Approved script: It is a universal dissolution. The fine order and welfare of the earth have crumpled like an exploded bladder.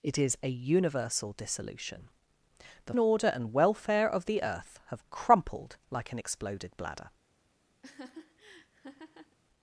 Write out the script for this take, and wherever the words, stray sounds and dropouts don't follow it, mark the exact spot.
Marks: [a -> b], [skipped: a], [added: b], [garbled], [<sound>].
It is a universal dissolution. The [skipped: fine] order and welfare of the earth have crumpled like an exploded bladder. [laugh]